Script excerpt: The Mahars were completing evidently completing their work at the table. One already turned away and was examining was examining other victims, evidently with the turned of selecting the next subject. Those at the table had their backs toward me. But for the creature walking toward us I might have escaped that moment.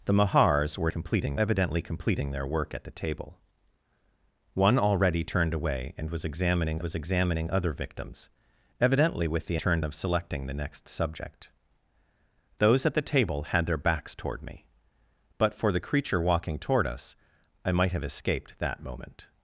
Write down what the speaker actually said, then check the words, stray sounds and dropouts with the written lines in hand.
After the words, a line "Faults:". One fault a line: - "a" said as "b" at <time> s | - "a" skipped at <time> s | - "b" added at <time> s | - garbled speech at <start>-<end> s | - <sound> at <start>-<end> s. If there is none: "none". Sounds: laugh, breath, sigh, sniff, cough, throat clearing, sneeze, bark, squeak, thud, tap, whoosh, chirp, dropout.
The Mahars were completing evidently completing their work at the table. One already turned away and was examining was examining other victims, evidently with the turned of selecting the next subject. Those at the table had their backs toward me. But for the creature walking toward us I might have escaped that moment.
Faults:
none